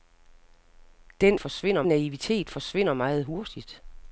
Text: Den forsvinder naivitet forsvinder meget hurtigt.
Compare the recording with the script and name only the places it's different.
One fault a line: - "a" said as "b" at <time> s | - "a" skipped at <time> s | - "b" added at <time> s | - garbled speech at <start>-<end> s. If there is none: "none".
none